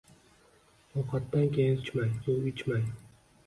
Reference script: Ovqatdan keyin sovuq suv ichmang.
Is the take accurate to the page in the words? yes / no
no